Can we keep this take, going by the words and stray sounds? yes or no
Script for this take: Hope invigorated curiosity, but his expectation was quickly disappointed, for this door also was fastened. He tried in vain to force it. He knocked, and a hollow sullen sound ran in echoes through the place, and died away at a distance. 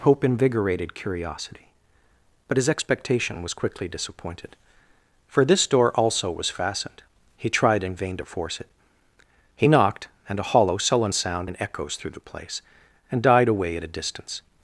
no